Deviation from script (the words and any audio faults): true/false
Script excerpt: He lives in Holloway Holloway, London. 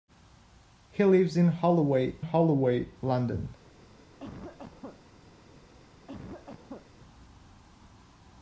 true